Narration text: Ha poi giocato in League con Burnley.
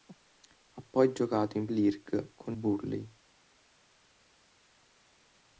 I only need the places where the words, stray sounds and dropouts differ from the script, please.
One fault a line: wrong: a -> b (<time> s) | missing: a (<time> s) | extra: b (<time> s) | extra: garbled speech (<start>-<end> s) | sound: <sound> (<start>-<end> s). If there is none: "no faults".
no faults